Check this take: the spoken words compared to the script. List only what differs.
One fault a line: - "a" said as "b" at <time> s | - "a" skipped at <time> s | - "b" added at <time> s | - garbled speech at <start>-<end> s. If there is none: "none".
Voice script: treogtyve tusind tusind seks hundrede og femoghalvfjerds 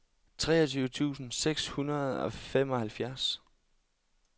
- "tusind" skipped at 1.3 s